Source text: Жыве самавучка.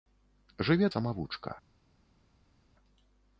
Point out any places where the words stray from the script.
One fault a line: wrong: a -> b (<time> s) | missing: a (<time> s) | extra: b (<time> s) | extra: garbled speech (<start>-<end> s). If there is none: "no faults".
no faults